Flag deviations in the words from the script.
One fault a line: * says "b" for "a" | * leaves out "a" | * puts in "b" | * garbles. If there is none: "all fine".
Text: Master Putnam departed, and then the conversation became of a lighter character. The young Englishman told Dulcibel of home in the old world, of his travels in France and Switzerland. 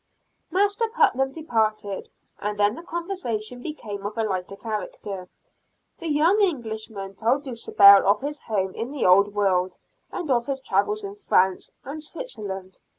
* puts in "his"
* puts in "and"